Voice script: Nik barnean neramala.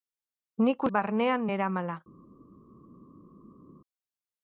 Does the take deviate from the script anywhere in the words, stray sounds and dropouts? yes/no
no